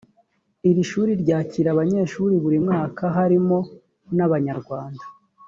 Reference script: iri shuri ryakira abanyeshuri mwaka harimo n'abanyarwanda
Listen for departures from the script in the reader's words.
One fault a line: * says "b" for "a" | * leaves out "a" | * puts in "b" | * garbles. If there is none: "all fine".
* puts in "buri"